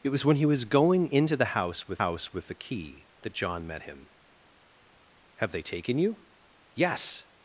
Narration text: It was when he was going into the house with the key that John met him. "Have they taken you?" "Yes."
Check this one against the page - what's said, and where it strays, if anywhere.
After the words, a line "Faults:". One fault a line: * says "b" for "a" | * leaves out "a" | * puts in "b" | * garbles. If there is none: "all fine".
It was when he was going into the house with house with the key that John met him. "Have they taken you?" "Yes."
Faults:
* puts in "house with"